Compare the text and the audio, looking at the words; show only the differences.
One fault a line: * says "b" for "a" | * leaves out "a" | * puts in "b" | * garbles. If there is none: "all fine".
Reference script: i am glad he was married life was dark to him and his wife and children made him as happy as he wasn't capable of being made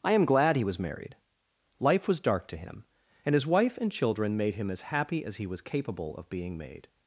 * says "was" for "wasn't"